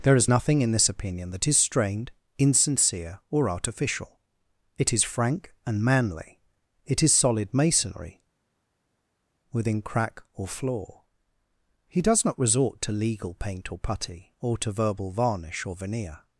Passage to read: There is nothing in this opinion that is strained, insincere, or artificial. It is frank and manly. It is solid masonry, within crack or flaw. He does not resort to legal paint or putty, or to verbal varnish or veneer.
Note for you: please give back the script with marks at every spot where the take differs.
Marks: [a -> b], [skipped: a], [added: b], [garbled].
There is nothing in this opinion that is strained, insincere, or artificial. It is frank and manly. It is solid masonry, within crack or flaw. He does not resort to legal paint or putty, or to verbal varnish or veneer.